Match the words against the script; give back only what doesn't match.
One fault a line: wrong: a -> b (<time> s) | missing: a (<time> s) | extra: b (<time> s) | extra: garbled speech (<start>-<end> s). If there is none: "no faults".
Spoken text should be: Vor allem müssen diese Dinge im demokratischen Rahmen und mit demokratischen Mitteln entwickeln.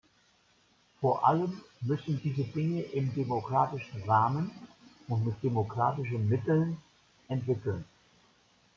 no faults